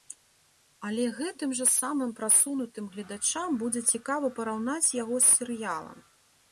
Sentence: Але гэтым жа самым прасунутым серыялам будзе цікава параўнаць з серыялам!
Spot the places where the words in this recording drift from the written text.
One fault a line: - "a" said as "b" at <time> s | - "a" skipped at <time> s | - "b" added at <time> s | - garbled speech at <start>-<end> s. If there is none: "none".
- "серыялам" said as "гледачам" at 3.0 s
- "яго" added at 5.0 s